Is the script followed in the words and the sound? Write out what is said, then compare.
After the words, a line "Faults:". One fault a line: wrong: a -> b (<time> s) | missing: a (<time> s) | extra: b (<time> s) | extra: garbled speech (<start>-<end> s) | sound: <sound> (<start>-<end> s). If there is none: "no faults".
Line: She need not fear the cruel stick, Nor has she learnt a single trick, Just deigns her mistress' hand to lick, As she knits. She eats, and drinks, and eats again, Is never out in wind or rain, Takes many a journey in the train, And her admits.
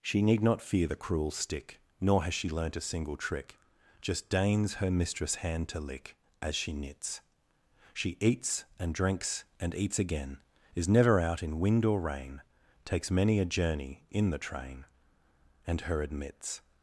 She need not fear the cruel stick, Nor has she learnt a single trick, Just deigns her mistress' hand to lick, As she knits. She eats, and drinks, and eats again, Is never out in wind or rain, Takes many a journey in the train, And her admits.
Faults:
no faults